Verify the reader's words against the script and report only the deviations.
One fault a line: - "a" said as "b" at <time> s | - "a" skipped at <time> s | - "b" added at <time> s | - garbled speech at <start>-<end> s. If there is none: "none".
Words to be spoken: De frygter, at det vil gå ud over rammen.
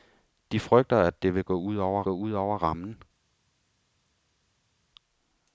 - "gå ud over" added at 2.0 s